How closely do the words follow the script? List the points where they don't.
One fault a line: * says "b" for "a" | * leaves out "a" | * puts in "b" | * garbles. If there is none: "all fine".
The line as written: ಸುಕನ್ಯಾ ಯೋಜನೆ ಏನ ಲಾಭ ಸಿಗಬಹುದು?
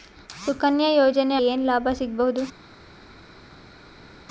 all fine